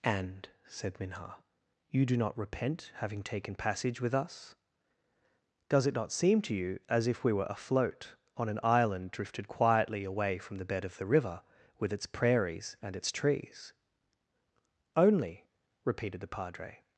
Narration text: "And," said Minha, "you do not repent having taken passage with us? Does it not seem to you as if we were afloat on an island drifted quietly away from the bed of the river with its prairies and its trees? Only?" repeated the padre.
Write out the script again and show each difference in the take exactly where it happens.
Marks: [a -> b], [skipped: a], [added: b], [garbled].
"And," said Minha, "you do not repent having taken passage with us? Does it not seem to you as if we were afloat on an island drifted quietly away from the bed of the river with its prairies and its trees? Only?" repeated the padre.